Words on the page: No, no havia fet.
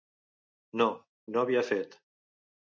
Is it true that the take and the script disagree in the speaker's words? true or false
false